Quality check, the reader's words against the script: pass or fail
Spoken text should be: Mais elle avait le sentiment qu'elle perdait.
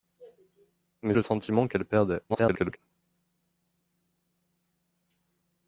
fail